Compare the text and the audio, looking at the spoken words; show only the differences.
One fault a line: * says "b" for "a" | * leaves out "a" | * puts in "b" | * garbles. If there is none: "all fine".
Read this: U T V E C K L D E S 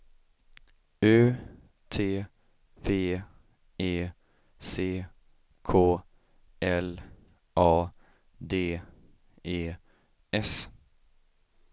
* puts in "A"